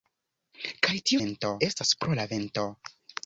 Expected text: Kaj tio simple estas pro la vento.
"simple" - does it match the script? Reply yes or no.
no